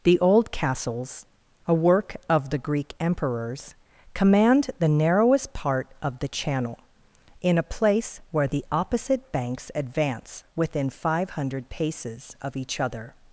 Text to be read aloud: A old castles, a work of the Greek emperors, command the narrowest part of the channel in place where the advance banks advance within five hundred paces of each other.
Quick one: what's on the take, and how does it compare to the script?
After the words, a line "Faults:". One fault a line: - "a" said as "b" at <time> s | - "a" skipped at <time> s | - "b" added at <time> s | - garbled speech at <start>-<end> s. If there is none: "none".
The old castles, a work of the Greek emperors, command the narrowest part of the channel in a place where the opposite banks advance within five hundred paces of each other.
Faults:
- "A" said as "The" at 0.0 s
- "a" added at 7.6 s
- "advance" said as "opposite" at 8.7 s